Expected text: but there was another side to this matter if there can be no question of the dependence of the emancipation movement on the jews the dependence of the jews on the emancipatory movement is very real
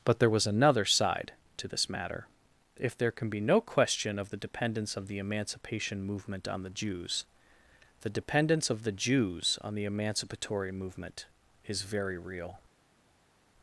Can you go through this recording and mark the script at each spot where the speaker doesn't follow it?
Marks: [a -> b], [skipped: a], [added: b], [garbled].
but there was another side to this matter if there can be no question of the dependence of the emancipation movement on the jews the dependence of the jews on the emancipatory movement is very real